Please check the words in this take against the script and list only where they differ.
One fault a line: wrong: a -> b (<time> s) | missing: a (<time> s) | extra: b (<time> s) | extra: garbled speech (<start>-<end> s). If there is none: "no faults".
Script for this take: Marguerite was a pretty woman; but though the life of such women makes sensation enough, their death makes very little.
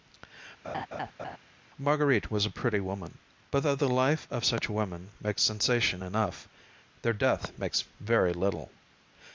no faults